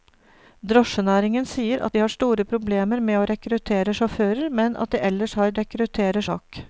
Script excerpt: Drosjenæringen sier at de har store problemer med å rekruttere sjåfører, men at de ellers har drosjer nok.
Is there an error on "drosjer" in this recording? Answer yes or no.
yes